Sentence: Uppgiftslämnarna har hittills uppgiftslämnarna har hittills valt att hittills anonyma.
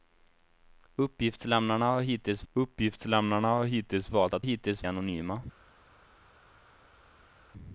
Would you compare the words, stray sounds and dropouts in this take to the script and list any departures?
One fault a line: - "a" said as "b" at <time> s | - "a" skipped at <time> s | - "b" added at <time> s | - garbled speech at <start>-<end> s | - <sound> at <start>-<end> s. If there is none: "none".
none